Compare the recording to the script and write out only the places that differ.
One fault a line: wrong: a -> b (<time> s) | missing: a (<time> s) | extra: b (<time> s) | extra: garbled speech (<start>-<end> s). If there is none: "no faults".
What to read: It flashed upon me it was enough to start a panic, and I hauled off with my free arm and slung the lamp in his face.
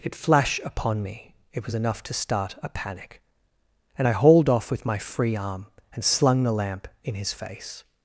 wrong: flashed -> flash (0.1 s)